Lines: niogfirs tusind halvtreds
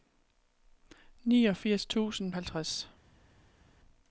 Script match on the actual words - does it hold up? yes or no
yes